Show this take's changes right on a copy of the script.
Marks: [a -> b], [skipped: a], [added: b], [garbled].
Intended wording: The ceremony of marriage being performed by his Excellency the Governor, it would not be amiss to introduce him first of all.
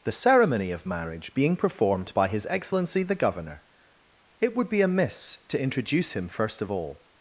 The ceremony of marriage being performed by his Excellency the Governor, it would [skipped: not] be amiss to introduce him first of all.